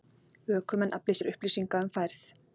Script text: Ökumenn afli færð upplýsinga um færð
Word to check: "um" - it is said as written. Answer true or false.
true